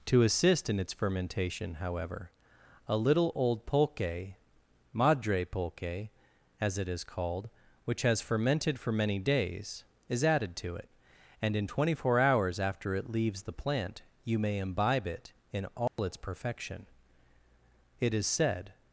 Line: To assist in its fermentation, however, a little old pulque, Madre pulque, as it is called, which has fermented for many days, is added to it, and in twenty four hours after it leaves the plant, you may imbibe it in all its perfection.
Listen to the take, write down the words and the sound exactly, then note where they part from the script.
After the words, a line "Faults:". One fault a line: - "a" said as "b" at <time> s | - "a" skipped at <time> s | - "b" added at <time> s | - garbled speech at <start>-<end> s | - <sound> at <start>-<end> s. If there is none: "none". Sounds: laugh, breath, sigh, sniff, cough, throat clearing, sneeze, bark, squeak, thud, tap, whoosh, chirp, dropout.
To assist in its fermentation, however, a little old pulque, Madre pulque, as it is called, which has fermented for many days, is added to it, and in twenty four hours after it leaves the plant, you may imbibe it in all its perfection. It is said
Faults:
- dropout at 15.9-16.0 s
- "It is said" added at 18.0 s